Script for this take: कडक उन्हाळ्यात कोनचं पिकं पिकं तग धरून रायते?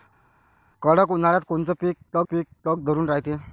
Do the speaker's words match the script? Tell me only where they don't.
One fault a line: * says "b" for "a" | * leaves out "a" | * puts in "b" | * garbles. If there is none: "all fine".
all fine